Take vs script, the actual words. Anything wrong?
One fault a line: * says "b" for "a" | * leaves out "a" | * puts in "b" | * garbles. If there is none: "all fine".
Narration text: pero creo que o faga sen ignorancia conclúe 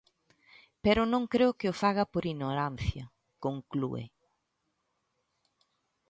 * puts in "non"
* says "por" for "sen"